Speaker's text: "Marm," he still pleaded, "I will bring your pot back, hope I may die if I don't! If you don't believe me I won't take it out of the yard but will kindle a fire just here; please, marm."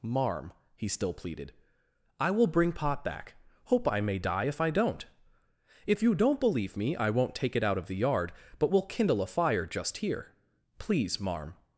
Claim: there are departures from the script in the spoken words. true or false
true